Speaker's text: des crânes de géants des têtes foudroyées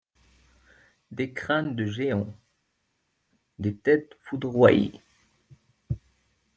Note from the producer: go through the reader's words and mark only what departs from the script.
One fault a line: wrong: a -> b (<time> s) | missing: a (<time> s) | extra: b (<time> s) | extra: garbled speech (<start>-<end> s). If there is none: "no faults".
no faults